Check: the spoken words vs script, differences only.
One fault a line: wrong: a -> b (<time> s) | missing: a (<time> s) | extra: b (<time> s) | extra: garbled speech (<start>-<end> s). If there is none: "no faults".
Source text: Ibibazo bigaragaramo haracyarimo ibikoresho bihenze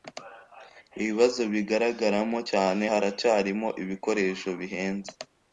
extra: cyane (2.5 s)